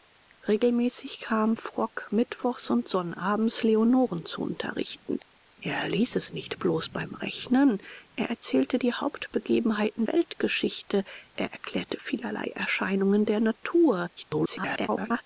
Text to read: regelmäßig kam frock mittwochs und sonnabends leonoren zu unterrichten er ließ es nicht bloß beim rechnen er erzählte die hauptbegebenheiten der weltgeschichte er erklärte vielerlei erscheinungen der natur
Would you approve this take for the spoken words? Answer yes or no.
no